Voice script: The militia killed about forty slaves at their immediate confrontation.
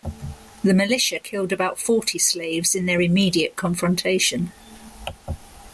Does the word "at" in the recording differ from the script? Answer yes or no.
yes